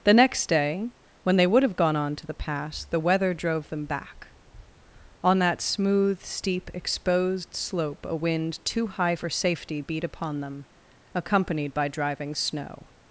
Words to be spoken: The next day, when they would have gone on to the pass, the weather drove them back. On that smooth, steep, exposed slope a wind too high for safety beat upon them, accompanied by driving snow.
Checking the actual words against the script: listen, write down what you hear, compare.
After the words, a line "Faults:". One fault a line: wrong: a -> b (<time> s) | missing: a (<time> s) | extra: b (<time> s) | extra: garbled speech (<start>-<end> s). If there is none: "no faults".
The next day, when they would have gone on to the pass, the weather drove them back. On that smooth, steep, exposed slope a wind too high for safety beat upon them, accompanied by driving snow.
Faults:
no faults